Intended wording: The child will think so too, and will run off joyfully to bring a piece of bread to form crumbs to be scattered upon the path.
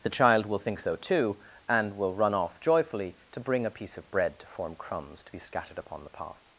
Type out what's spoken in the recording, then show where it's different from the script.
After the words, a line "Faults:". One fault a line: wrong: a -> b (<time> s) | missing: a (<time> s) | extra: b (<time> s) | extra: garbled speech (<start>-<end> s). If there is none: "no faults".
The child will think so too, and will run off joyfully to bring a piece of bread to form crumbs to be scattered upon the path.
Faults:
no faults